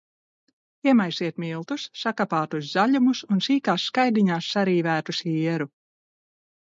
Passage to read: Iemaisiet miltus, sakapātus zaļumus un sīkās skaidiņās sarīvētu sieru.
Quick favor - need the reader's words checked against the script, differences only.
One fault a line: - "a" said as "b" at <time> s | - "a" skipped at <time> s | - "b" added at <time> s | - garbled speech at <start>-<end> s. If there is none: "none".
none